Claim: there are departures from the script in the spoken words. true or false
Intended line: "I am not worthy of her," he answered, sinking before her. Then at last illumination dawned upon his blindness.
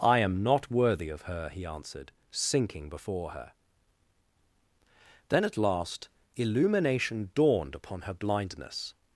true